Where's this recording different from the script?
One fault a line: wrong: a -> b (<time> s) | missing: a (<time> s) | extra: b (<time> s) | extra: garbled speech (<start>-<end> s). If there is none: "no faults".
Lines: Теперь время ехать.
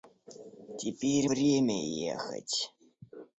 no faults